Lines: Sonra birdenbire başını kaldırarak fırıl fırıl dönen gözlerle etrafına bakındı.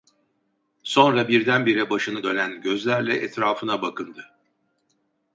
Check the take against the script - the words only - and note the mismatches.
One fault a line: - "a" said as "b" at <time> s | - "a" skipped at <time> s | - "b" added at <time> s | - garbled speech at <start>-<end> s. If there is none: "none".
- "kaldırarak fırıl fırıl" skipped at 2.2 s